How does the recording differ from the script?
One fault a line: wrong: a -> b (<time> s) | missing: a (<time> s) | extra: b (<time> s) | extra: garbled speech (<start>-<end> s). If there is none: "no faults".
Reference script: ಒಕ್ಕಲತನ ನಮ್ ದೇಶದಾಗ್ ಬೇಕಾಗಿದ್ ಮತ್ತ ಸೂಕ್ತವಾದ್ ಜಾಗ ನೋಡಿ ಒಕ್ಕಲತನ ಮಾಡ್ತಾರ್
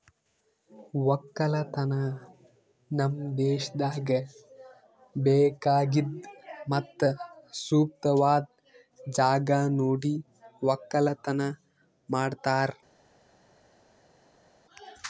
no faults